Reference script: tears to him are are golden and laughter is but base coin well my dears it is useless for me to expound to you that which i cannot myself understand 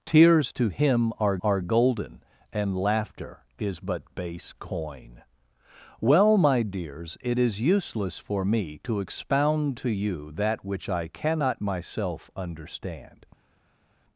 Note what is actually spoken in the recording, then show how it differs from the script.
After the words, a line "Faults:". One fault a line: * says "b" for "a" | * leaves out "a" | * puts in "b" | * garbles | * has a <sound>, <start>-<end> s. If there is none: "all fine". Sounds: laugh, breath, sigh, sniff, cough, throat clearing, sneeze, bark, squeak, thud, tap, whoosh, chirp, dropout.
tears to him are are golden and laughter is but base coin well my dears it is useless for me to expound to you that which i cannot myself understand
Faults:
all fine